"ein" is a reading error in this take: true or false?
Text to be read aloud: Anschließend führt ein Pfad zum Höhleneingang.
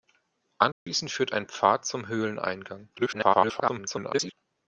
false